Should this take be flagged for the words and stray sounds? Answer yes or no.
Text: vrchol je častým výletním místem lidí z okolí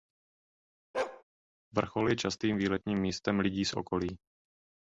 yes